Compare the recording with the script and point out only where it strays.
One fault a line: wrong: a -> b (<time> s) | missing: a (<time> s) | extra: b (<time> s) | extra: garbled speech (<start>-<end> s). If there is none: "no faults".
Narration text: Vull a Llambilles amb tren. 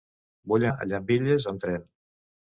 no faults